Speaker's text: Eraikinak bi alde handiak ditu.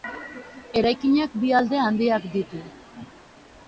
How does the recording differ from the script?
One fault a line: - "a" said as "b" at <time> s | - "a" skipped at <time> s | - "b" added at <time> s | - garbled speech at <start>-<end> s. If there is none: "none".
none